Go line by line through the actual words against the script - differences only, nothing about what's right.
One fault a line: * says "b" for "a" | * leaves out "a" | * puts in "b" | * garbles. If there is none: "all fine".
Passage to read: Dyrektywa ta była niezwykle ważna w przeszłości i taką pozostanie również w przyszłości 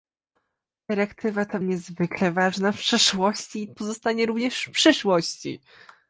* leaves out "była"
* leaves out "taką"